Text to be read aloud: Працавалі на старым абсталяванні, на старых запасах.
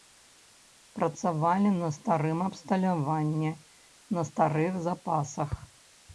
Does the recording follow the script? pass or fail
pass